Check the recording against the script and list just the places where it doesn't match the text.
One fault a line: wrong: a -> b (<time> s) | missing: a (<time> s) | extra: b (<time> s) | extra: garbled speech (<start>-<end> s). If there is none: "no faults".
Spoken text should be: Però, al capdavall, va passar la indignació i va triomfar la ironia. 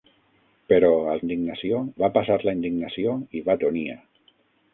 wrong: capdavall -> indignació (1.3 s)
missing: triomfar la (3.6 s)